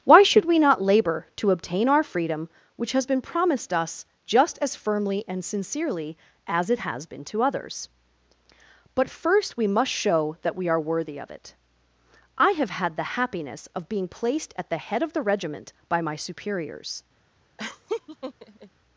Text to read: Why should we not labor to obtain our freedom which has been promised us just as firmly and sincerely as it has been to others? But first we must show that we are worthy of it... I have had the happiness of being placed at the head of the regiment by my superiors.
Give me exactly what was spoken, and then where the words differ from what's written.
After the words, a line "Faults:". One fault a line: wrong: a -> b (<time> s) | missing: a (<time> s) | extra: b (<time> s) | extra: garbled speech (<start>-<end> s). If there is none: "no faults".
Why should we not labor to obtain our freedom which has been promised us just as firmly and sincerely as it has been to others? But first we must show that we are worthy of it... I have had the happiness of being placed at the head of the regiment by my superiors.
Faults:
no faults